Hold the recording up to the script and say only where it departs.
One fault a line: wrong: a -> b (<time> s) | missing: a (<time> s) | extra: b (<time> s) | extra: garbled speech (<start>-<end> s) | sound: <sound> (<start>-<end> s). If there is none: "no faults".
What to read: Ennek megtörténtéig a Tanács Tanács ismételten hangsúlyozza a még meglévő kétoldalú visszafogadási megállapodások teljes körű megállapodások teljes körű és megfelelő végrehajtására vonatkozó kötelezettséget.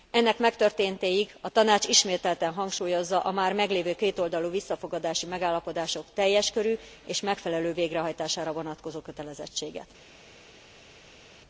missing: Tanács (1.9 s)
wrong: még -> már (3.3 s)
missing: megállapodások teljes körű (6.8 s)